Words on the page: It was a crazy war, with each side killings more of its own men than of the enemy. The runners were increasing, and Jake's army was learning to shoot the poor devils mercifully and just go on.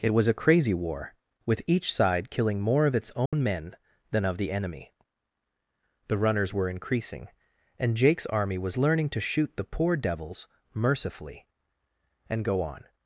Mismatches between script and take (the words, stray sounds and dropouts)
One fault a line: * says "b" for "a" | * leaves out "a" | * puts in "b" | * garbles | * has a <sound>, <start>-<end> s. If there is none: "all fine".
* says "killing" for "killings"
* has a dropout, 3.3-3.3 s
* leaves out "just"